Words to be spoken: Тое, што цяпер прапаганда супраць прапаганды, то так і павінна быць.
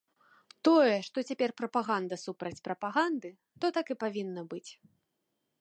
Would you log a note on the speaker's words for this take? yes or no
no